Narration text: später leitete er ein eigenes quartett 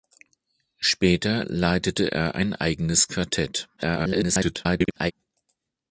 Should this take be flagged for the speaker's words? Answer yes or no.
yes